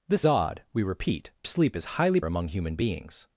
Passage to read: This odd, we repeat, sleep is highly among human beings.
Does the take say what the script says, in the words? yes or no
yes